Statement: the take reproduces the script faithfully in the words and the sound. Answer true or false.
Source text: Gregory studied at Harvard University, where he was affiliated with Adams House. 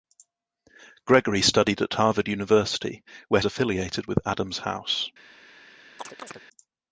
false